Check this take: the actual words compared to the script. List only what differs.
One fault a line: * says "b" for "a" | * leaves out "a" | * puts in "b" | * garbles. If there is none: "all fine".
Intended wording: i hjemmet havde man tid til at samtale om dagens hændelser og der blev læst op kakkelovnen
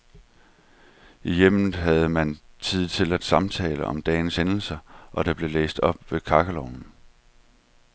* puts in "ved"